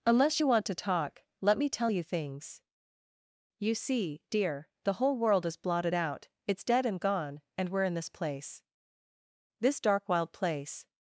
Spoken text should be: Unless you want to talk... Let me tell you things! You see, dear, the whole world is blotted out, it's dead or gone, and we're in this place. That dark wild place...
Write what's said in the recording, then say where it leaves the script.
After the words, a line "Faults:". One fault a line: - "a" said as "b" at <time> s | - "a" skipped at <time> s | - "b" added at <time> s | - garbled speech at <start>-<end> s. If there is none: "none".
Unless you want to talk... Let me tell you things! You see, dear, the whole world is blotted out, it's dead and gone, and we're in this place. This dark wild place...
Faults:
- "or" said as "and" at 6.9 s
- "That" said as "This" at 9.6 s